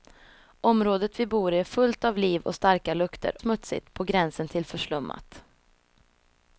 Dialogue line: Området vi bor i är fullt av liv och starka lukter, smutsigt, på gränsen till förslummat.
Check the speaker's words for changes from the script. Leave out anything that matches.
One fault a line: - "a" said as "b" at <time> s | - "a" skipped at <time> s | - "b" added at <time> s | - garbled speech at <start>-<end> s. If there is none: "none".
none